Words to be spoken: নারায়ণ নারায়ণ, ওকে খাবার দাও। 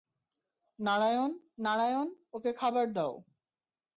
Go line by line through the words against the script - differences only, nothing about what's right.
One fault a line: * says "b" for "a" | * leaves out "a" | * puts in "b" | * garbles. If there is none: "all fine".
all fine